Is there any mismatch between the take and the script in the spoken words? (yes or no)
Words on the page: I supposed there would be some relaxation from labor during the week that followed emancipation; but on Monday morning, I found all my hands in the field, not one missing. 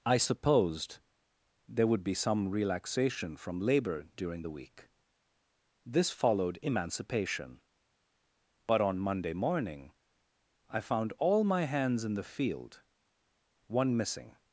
yes